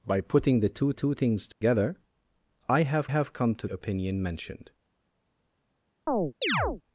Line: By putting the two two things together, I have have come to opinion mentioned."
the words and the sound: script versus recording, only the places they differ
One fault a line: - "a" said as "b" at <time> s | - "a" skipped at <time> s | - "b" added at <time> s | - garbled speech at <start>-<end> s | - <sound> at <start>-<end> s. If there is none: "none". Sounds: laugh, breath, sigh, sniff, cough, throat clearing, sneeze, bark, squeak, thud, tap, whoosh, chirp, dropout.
- dropout at 1.5-1.6 s
- chirp at 6.1-6.8 s